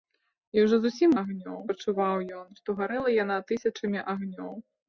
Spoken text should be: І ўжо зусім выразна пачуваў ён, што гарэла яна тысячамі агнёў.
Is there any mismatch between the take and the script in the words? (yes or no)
yes